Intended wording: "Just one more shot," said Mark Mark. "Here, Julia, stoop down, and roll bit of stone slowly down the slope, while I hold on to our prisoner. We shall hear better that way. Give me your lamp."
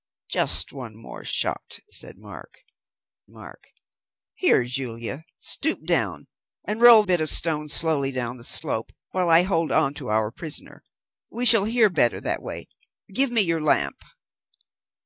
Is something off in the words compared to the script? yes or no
no